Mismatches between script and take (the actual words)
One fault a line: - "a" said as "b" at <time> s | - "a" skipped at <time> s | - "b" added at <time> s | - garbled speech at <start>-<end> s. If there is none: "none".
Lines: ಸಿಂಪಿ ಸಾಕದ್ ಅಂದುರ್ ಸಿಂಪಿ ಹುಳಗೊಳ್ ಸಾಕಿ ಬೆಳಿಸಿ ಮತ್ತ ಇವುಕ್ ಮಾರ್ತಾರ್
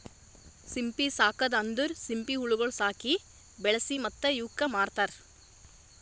none